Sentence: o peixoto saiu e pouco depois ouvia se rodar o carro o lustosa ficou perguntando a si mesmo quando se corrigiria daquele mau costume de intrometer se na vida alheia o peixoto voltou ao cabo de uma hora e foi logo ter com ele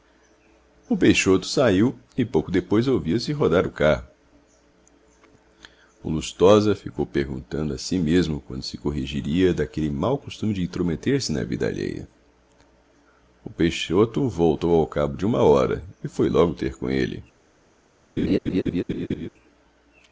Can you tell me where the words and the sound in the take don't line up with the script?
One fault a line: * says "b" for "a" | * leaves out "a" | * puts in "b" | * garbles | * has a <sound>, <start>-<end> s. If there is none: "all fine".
* has a laugh, 18.2-19.3 s